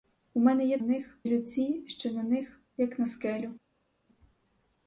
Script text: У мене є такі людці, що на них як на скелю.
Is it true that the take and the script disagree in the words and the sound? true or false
true